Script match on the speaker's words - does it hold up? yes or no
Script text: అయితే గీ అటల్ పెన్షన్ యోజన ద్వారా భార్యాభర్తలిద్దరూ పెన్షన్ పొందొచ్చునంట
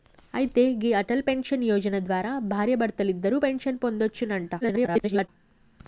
no